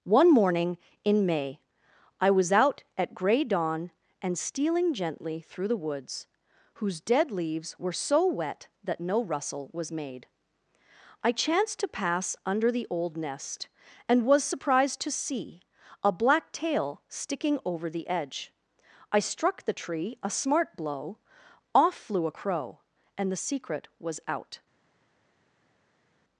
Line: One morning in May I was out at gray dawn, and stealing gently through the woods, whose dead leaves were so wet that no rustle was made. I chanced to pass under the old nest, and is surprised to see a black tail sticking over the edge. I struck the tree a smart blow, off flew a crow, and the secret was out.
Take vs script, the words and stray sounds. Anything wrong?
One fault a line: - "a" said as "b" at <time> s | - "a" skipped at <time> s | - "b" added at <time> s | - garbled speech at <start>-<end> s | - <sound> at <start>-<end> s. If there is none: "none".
- "is" said as "was" at 14.3 s